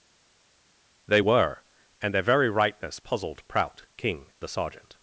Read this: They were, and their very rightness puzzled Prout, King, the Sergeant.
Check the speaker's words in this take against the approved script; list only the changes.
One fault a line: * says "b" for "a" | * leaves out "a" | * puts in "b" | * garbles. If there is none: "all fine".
all fine